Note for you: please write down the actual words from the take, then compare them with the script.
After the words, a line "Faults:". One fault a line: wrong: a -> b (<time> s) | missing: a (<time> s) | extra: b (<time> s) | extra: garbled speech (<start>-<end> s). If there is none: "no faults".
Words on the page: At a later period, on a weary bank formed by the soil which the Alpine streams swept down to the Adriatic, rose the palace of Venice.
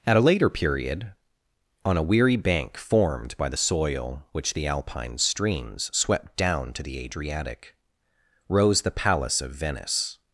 At a later period, on a weary bank formed by the soil which the Alpine streams swept down to the Adriatic, rose the palace of Venice.
Faults:
no faults